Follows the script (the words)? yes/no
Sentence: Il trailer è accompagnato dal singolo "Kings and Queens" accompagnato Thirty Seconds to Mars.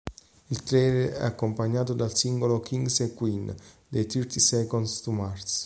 no